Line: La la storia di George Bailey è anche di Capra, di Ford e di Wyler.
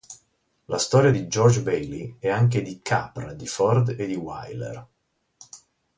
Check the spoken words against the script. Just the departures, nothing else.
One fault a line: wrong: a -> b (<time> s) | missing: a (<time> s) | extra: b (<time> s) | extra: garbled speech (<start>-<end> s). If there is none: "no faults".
missing: la (0.8 s)